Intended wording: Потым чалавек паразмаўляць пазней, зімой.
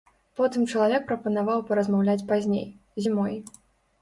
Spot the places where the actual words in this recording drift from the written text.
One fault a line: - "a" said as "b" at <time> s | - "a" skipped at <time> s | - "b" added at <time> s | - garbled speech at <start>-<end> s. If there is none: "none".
- "прапанаваў" added at 1.1 s